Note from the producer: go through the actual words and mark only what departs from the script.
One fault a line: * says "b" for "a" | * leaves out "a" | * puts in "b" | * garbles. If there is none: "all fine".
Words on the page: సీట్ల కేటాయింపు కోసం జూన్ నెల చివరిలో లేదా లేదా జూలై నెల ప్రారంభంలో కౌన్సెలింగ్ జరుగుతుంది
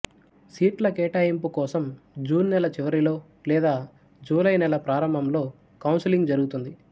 * leaves out "లేదా"